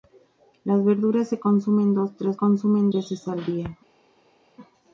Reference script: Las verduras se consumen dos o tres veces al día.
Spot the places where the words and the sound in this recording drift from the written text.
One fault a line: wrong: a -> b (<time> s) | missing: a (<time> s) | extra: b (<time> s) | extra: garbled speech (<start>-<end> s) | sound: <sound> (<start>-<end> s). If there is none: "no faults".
wrong: tres -> consumen (2.3 s)